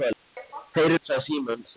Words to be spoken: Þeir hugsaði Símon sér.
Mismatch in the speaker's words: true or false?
false